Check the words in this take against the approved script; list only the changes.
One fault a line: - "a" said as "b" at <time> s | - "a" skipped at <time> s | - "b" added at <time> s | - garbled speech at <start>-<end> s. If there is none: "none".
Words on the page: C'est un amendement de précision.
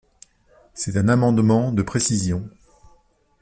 none